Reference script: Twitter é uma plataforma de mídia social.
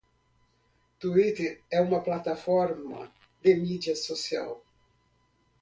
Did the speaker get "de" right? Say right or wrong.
right